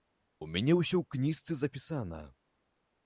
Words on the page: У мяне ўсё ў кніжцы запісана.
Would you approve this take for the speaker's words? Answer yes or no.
yes